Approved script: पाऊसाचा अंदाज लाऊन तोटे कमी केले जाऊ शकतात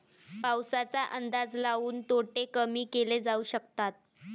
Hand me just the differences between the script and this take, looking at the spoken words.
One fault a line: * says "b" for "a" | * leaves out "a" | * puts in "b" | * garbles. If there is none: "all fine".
all fine